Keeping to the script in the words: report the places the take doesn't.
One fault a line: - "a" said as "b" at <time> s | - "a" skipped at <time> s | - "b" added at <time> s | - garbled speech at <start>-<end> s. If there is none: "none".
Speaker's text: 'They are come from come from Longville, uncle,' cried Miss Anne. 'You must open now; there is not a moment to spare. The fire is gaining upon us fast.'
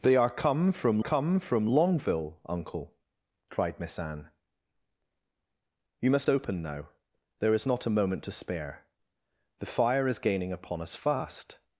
none